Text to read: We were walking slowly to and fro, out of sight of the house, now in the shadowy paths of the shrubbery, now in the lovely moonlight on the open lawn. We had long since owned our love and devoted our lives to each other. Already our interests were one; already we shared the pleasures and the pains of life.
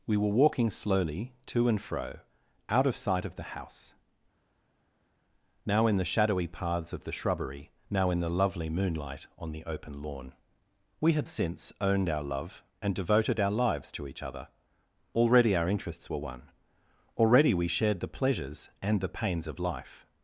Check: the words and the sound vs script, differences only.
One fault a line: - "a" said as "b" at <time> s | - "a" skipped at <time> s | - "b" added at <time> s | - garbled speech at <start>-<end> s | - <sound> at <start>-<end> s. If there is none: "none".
- "long" skipped at 11.3 s